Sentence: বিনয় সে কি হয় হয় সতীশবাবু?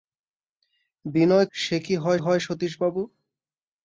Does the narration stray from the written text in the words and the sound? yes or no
no